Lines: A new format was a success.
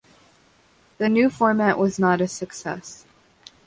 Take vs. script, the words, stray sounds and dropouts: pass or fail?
fail